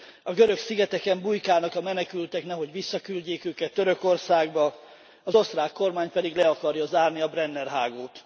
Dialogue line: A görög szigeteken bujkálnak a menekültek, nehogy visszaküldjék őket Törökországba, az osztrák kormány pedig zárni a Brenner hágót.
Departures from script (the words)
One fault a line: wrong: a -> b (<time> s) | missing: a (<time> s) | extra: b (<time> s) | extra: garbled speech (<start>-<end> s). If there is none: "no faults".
extra: le akarja (6.3 s)